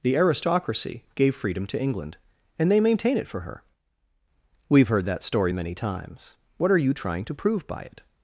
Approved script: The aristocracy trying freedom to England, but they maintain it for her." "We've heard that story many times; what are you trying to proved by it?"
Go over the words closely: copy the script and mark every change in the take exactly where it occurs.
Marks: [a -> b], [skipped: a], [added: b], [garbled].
The aristocracy [trying -> gave] freedom to England, [but -> and] they maintain it for her." "We've heard that story many times; what are you trying to [proved -> prove] by it?"